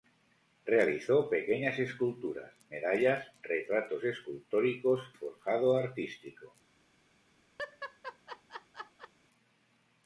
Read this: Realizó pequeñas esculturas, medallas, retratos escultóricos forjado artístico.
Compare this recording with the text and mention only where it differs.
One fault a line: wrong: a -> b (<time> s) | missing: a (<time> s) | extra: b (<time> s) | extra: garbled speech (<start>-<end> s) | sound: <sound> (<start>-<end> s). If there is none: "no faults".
sound: laugh (7.6-9.1 s)